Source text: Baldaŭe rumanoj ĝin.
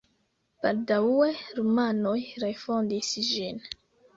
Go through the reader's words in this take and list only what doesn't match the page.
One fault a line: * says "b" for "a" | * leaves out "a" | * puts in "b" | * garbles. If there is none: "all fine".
* puts in "refondis"